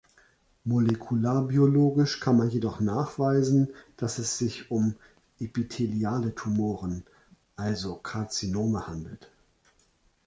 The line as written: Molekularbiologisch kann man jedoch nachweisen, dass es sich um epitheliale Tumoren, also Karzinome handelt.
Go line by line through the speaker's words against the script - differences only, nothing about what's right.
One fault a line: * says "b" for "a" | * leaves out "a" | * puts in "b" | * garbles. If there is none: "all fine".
all fine